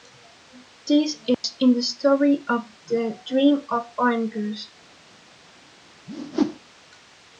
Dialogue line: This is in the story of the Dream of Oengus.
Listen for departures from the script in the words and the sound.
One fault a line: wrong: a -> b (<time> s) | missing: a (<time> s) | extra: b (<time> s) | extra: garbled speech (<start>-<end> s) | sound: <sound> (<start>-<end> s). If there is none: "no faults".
sound: dropout (1.3-1.4 s)
sound: whoosh (6.1-6.6 s)